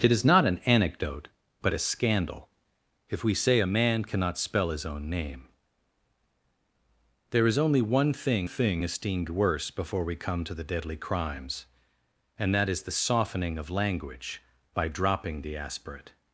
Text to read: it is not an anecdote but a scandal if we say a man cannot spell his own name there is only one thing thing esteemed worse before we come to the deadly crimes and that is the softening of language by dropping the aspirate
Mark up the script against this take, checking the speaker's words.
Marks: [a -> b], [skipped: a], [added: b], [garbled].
it is not an anecdote but a scandal if we say a man cannot spell his own name there is only one thing thing esteemed worse before we come to the deadly crimes and that is the softening of language by dropping the aspirate